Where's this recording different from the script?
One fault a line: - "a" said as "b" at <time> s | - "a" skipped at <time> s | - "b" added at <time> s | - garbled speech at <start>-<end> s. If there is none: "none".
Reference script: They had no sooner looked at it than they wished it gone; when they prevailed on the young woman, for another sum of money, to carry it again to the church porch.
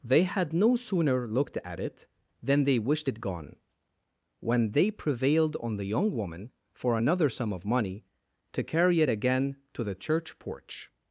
none